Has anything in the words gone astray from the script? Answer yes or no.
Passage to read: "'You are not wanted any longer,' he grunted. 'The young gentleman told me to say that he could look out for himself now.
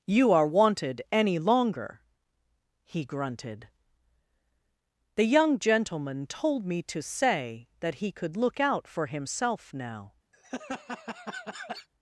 yes